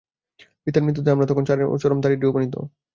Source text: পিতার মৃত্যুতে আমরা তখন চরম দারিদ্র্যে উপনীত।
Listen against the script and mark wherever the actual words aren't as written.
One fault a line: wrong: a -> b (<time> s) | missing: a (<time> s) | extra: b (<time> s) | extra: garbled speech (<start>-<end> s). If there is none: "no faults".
no faults